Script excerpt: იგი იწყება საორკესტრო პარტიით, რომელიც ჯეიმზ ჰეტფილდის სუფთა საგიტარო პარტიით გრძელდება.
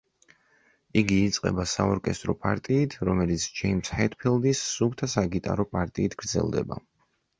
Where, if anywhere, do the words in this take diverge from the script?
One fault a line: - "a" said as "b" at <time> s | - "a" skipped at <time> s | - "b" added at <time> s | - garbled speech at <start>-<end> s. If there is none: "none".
none